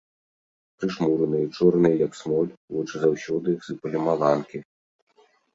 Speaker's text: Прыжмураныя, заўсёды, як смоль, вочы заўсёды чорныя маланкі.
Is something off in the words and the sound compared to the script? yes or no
yes